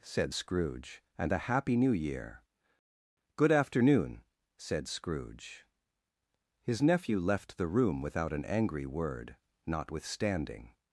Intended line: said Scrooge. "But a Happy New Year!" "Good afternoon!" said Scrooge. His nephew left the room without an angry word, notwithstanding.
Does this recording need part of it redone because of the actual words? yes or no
yes